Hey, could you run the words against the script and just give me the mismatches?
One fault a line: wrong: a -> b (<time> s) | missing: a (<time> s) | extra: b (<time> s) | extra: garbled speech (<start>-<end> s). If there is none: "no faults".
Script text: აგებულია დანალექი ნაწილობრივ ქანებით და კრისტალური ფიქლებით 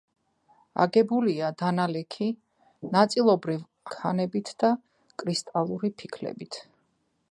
no faults